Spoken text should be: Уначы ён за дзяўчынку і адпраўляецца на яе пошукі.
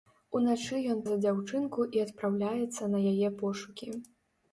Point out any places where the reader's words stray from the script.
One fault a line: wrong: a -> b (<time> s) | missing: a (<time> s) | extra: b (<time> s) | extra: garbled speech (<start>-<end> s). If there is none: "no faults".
no faults